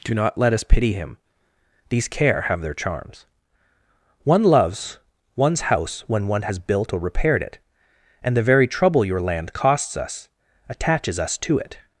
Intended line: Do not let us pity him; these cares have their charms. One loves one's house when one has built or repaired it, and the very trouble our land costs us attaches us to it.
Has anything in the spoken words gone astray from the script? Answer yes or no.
yes